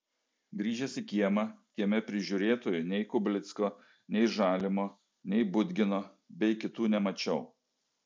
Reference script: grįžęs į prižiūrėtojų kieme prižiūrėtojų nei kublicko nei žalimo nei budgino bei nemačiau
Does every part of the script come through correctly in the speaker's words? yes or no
no